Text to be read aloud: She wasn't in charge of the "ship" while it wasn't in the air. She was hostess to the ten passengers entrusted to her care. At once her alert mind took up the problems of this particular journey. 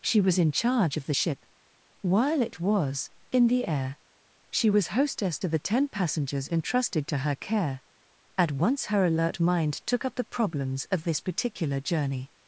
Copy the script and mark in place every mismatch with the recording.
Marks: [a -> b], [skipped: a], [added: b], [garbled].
She [wasn't -> was] in charge of the "ship" while it [wasn't -> was] in the air. She was hostess to the ten passengers entrusted to her care. At once her alert mind took up the problems of this particular journey.